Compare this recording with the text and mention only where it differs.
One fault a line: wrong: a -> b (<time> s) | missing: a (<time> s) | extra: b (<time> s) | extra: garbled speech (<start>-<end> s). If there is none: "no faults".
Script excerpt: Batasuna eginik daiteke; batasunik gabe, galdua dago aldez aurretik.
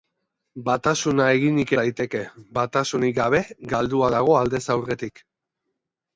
no faults